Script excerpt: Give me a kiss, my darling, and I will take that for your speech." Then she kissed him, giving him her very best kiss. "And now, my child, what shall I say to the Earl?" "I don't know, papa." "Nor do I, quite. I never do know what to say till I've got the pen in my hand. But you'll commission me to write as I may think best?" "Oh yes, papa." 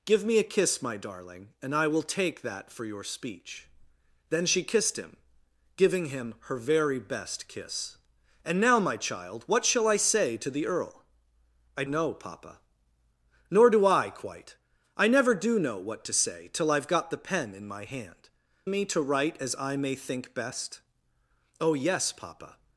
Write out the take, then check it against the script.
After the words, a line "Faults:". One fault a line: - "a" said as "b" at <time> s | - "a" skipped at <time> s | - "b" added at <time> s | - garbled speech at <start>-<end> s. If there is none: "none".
Give me a kiss, my darling, and I will take that for your speech." Then she kissed him, giving him her very best kiss. "And now, my child, what shall I say to the Earl?" "I know, papa." "Nor do I, quite. I never do know what to say till I've got the pen in my hand. Me to write as I may think best?" "Oh yes, papa."
Faults:
- "don't" skipped at 11.8 s
- "But you'll commission" skipped at 18.3 s